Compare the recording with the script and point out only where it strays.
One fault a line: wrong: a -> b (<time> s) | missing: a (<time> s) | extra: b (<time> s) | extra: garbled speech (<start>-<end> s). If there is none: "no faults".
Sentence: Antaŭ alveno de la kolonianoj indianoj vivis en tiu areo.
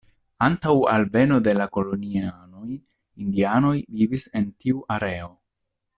no faults